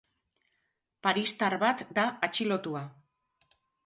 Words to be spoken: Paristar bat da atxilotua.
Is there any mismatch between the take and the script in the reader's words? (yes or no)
no